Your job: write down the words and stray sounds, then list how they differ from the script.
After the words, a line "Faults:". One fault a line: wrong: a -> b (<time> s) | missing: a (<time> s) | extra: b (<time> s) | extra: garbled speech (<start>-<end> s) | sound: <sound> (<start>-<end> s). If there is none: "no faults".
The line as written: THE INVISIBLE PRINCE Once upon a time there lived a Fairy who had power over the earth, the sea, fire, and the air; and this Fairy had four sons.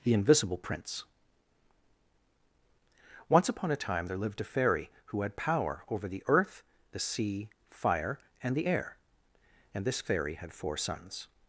THE INVISIBLE PRINCE Once upon a time there lived a Fairy who had power over the earth, the sea, fire, and the air; and this Fairy had four sons.
Faults:
no faults